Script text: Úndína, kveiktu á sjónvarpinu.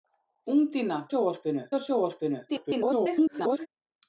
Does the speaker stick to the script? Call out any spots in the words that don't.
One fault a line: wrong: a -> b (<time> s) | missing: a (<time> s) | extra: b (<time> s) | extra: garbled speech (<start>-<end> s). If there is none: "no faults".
wrong: kveiktu -> sjónvarpinu (1.1 s)
extra: garbled speech (2.5-3.7 s)